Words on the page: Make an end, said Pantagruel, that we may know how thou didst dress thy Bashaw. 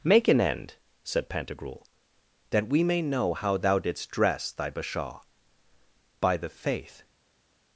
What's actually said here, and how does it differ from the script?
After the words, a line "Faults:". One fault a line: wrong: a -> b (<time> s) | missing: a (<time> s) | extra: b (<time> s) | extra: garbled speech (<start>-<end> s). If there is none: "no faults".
Make an end, said Pantagruel, that we may know how thou didst dress thy Bashaw. By the faith
Faults:
extra: By the faith (6.2 s)